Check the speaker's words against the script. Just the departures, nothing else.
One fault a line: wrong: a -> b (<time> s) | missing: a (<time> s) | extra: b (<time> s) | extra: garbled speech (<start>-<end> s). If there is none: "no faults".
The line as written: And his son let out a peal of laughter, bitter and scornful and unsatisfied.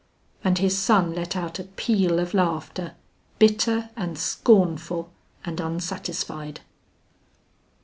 no faults